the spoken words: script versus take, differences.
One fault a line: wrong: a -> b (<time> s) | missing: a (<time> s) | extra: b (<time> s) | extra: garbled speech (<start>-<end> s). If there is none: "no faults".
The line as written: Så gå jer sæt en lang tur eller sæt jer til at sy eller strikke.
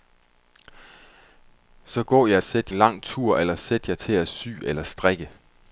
no faults